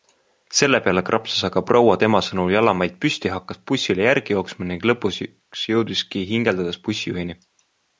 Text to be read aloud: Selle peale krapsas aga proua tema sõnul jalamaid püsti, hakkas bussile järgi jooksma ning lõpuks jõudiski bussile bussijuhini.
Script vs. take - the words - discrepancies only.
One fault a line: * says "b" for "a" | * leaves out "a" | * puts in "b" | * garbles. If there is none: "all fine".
* says "hingeldades" for "bussile"